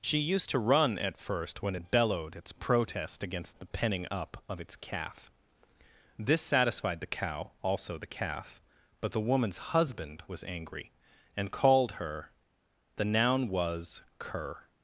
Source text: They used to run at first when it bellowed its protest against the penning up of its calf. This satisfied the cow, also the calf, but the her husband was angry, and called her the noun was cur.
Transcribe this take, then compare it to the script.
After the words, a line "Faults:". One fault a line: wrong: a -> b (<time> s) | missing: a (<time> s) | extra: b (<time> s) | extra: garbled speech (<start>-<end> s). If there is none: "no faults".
She used to run at first when it bellowed its protest against the penning up of its calf. This satisfied the cow, also the calf, but the woman's husband was angry, and called her the noun was cur.
Faults:
wrong: They -> She (0.0 s)
wrong: her -> woman's (9.2 s)